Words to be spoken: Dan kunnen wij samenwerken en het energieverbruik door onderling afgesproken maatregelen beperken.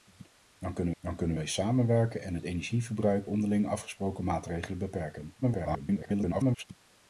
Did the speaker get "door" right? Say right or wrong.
wrong